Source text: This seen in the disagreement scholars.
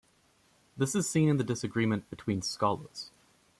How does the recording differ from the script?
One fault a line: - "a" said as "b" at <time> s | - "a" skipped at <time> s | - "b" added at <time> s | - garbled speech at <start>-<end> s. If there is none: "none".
- "is" added at 0.9 s
- "between" added at 2.1 s